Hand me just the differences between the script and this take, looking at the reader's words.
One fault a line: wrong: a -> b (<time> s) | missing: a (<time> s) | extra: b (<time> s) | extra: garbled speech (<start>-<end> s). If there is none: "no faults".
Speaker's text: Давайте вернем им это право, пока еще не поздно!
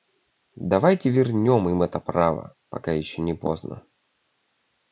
no faults